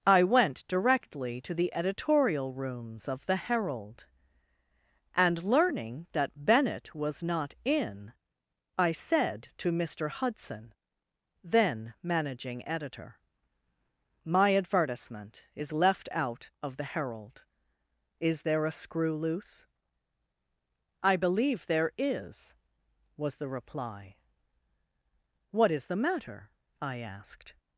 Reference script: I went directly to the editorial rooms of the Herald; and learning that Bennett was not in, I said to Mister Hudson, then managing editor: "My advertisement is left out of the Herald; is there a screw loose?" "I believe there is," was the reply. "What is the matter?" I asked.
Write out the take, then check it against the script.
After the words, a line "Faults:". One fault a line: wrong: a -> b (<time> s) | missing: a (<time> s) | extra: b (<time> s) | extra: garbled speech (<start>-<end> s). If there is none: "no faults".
I went directly to the editorial rooms of the Herald; and learning that Bennett was not in, I said to Mister Hudson, then managing editor: "My advertisement is left out of the Herald; is there a screw loose?" "I believe there is," was the reply. "What is the matter?" I asked.
Faults:
no faults